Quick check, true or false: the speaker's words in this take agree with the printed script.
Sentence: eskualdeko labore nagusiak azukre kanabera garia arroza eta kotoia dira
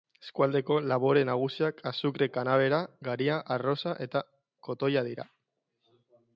true